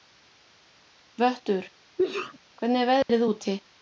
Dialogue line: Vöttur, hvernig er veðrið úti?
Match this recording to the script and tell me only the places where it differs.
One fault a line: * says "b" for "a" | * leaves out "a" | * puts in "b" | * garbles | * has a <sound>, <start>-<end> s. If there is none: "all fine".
* has a sneeze, 2.0-2.4 s
* has a dropout, 3.0-3.1 s